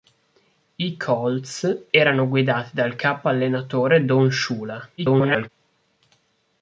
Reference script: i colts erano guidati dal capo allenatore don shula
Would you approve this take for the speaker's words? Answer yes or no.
no